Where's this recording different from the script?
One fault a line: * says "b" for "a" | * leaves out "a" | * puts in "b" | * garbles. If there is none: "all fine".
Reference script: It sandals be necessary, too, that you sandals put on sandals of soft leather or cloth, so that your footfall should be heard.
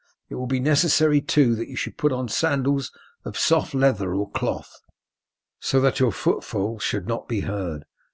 * says "will" for "sandals"
* says "should" for "sandals"
* puts in "not"